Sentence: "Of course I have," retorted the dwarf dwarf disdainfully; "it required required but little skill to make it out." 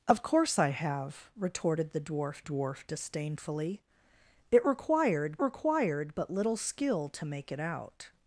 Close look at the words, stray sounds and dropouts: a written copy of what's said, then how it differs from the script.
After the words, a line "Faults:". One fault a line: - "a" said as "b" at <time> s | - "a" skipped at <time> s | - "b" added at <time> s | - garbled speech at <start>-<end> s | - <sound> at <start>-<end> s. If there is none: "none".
"Of course I have," retorted the dwarf dwarf disdainfully; "it required required but little skill to make it out."
Faults:
none